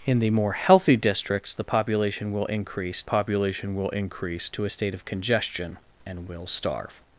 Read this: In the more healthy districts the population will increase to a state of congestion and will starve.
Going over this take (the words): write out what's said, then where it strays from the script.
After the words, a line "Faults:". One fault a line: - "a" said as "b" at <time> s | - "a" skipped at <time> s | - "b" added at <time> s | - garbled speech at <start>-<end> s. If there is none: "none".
In the more healthy districts the population will increase population will increase to a state of congestion and will starve.
Faults:
- "population will increase" added at 3.0 s